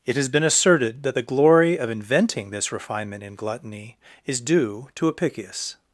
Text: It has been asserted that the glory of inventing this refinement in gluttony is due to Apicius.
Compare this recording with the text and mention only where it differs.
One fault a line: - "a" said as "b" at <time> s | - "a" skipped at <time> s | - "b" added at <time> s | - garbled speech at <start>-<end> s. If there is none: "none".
none